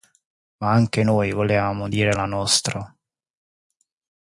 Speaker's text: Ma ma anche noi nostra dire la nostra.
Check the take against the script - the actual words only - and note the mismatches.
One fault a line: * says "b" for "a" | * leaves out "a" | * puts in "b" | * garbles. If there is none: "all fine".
* leaves out "ma"
* says "volevamo" for "nostra"